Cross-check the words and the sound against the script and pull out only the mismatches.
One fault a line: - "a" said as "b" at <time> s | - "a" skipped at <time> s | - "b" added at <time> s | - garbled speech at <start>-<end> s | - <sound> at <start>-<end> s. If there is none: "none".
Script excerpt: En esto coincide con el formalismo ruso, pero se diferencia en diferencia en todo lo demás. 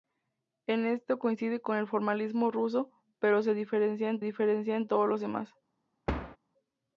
- thud at 6.1-6.4 s